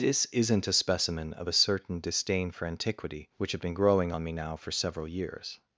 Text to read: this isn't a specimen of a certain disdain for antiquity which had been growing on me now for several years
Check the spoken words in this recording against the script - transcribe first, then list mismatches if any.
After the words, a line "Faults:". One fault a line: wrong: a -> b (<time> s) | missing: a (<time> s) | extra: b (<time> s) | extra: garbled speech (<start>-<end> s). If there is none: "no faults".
this isn't a specimen of a certain disdain for antiquity which had been growing on me now for several years
Faults:
no faults